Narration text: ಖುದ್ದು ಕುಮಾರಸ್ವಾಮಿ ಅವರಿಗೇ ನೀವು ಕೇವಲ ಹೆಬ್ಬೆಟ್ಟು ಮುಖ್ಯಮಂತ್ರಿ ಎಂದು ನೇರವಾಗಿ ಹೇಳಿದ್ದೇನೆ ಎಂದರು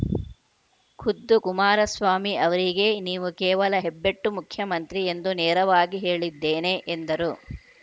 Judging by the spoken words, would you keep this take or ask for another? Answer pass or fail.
pass